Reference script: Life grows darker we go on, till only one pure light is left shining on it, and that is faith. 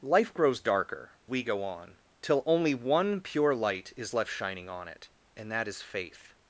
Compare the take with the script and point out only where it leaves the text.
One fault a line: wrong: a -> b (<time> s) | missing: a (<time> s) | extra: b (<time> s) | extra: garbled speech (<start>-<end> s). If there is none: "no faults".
no faults